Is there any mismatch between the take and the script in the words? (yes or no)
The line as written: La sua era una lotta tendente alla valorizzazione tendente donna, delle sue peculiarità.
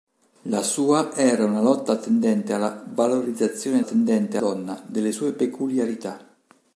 no